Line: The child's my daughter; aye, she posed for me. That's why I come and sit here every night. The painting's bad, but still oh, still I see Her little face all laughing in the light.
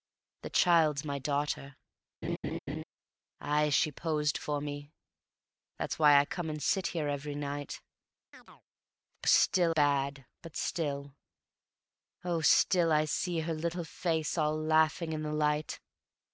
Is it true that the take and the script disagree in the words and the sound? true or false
true